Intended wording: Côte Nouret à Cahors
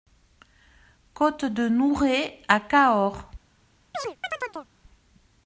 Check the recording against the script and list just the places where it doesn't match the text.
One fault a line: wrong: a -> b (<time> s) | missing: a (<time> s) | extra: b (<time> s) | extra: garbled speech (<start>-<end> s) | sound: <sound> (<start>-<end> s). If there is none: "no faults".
extra: de (1.4 s)
sound: chirp (3.9-4.7 s)